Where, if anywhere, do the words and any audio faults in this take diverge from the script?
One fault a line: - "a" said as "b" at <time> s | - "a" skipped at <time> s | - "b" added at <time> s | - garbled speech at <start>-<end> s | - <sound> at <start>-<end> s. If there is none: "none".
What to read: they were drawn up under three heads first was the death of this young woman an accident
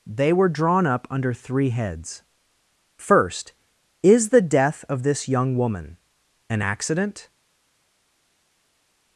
- "was" said as "is" at 4.0 s